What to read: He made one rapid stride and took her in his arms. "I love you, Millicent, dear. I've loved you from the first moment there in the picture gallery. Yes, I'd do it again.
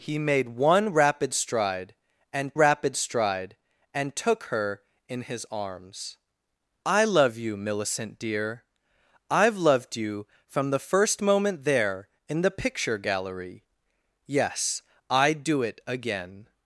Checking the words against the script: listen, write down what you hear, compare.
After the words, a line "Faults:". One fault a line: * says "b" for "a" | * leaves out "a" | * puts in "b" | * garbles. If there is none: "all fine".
He made one rapid stride and rapid stride and took her in his arms. "I love you, Millicent, dear. I've loved you from the first moment there in the picture gallery. Yes, I'd do it again.
Faults:
* puts in "rapid stride and"